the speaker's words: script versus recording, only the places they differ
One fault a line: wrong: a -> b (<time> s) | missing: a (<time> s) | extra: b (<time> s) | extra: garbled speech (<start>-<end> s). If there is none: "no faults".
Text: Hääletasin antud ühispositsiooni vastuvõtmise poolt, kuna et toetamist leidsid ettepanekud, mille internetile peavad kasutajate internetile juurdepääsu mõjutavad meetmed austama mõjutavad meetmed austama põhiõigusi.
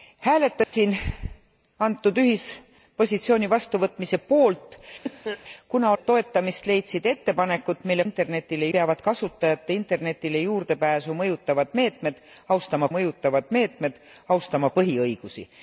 no faults